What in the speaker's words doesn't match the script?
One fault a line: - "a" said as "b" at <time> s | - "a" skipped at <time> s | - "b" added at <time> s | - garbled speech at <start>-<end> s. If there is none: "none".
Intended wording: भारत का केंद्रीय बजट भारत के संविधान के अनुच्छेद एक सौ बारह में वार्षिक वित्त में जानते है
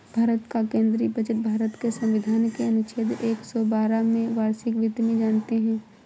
none